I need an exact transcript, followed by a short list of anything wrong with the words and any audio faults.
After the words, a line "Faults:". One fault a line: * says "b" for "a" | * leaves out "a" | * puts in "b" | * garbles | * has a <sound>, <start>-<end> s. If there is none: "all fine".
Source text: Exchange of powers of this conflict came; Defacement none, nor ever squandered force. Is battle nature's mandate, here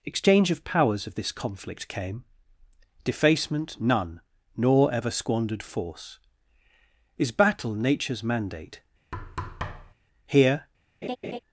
Exchange of powers of this conflict came; Defacement none, nor ever squandered force. Is battle nature's mandate, here
Faults:
* has a thud, 9.1-9.9 s
* has a laugh, 11.0-11.4 s